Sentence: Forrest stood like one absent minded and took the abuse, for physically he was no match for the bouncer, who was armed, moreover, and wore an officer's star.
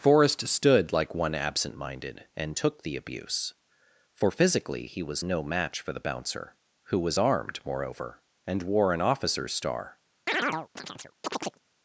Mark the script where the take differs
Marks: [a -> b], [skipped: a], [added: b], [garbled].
Forrest stood like one absent minded and took the abuse, for physically he was no match for the bouncer, who was armed, moreover, and wore an officer's star.